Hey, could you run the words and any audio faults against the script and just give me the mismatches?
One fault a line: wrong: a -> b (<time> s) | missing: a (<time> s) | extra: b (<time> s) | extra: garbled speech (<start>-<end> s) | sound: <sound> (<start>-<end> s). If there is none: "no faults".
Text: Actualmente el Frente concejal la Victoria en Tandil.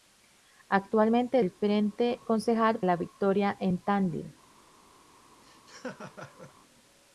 sound: laugh (5.4-6.5 s)